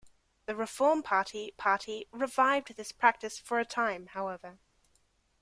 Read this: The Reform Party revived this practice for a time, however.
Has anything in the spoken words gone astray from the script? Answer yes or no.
yes